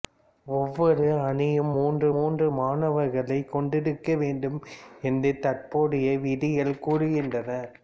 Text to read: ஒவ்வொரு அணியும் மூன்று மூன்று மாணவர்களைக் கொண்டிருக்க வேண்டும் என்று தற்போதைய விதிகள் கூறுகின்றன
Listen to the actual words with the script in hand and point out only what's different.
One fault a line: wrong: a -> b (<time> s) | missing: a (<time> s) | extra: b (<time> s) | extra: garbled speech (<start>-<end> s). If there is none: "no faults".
no faults